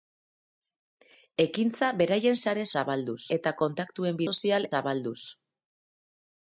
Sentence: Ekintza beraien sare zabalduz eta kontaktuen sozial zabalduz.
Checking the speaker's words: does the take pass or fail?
pass